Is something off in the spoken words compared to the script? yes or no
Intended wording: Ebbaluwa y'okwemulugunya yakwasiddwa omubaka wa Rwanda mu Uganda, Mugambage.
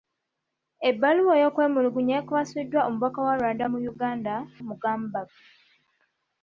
no